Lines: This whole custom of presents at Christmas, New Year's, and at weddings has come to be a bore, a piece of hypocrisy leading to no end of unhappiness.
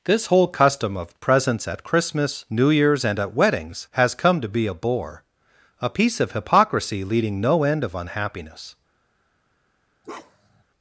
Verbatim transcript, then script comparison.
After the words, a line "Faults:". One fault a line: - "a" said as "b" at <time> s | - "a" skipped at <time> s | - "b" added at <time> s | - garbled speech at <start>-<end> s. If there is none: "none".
This whole custom of presents at Christmas, New Year's, and at weddings has come to be a bore, a piece of hypocrisy leading no end of unhappiness.
Faults:
- "to" skipped at 7.4 s